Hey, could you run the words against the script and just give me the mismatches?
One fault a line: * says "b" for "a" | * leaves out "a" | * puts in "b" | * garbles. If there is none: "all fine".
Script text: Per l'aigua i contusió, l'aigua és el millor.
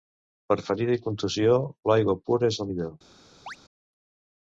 * says "ferida" for "l'aigua"
* puts in "pura"